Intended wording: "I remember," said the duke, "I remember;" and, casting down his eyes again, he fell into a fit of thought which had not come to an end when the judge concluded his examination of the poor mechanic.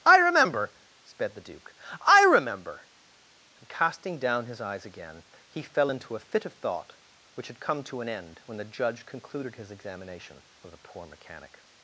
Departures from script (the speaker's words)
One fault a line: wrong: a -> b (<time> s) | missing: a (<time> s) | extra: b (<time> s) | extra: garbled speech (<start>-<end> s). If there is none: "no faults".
wrong: said -> sped (1.0 s)
missing: not (7.6 s)